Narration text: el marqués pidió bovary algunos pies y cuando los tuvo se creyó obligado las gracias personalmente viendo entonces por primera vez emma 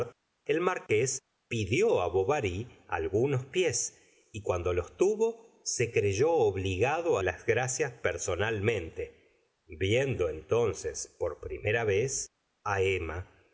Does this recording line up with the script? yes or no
yes